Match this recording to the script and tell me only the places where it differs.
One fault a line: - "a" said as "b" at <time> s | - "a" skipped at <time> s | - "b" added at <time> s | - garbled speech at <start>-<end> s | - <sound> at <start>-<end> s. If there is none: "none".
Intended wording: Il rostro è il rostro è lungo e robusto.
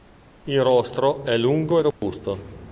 - "il rostro è" skipped at 1.4 s
- dropout at 1.9-2.0 s